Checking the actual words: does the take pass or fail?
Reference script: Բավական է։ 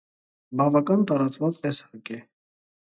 fail